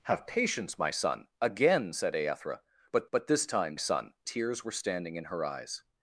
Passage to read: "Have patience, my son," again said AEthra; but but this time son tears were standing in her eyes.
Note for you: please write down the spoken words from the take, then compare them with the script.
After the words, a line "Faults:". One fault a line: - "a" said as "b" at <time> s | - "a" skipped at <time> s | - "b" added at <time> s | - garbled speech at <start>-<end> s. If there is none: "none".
"Have patience, my son," again said AEthra; but but this time son tears were standing in her eyes.
Faults:
none